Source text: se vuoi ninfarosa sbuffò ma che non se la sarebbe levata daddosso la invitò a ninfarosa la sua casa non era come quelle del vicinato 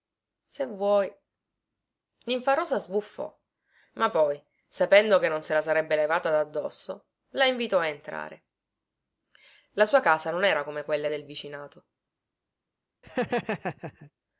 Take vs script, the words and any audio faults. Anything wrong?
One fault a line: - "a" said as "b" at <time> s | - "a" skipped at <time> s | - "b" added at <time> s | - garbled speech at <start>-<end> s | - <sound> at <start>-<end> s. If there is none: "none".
- "poi sapendo" added at 4.1 s
- "ninfarosa" said as "entrare" at 7.9 s
- laugh at 13.0-14.1 s